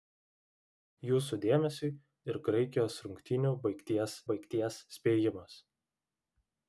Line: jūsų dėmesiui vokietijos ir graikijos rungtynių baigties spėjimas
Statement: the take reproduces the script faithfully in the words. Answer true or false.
false